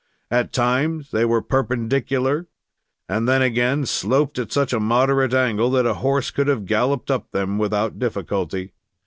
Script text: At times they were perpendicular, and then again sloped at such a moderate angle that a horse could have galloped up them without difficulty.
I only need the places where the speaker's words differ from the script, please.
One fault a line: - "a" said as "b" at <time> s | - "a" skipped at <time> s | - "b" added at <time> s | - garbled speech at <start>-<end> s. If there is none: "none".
none